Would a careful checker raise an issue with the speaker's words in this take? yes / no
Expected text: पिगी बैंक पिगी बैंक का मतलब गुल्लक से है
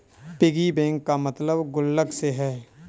yes